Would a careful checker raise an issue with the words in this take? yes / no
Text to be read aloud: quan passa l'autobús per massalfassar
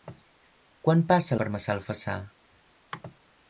yes